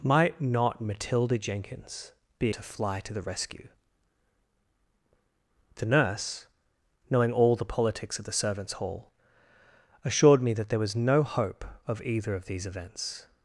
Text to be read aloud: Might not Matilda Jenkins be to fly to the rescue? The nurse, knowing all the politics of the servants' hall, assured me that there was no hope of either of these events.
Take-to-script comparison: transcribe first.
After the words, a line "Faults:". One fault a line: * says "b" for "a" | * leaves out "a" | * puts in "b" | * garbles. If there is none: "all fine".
Might not Matilda Jenkins be to fly to the rescue? The nurse, knowing all the politics of the servants' hall, assured me that there was no hope of either of these events.
Faults:
all fine